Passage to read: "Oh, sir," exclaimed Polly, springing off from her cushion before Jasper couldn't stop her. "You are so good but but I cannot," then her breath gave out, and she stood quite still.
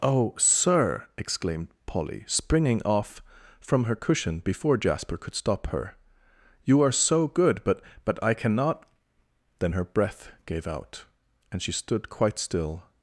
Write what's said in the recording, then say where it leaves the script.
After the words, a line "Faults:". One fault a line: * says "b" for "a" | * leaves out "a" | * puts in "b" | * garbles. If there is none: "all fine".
"Oh, sir," exclaimed Polly, springing off from her cushion before Jasper could stop her. "You are so good but but I cannot," then her breath gave out, and she stood quite still.
Faults:
* says "could" for "couldn't"